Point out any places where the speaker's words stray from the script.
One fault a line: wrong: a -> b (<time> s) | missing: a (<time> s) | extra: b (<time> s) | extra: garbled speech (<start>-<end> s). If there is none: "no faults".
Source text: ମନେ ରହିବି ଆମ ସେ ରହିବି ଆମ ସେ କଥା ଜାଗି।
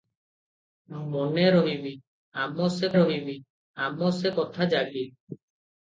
no faults